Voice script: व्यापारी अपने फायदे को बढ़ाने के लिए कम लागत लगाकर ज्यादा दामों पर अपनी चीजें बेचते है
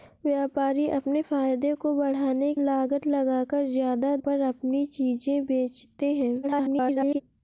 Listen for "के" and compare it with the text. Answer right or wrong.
wrong